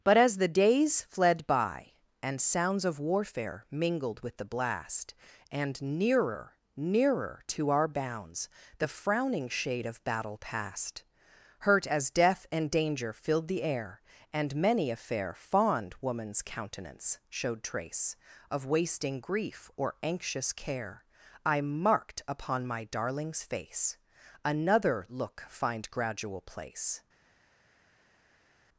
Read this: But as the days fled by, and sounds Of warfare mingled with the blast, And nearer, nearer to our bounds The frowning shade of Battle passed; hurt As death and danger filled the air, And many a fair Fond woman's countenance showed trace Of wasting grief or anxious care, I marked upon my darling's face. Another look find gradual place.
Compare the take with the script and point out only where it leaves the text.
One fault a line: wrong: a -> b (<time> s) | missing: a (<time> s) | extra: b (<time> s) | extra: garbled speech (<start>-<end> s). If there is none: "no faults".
no faults